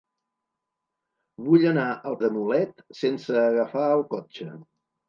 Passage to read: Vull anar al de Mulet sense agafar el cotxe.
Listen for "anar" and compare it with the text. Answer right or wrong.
right